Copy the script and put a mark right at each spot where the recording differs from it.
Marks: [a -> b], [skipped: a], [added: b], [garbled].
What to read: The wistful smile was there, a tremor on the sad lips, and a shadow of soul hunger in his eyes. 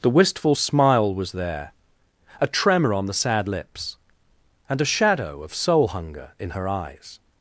The wistful smile was there, a tremor on the sad lips, and a shadow of soul hunger in [his -> her] eyes.